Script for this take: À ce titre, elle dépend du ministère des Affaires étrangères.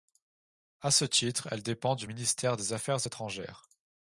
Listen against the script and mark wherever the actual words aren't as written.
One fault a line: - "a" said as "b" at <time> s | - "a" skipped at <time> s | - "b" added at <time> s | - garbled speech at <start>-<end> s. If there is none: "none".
none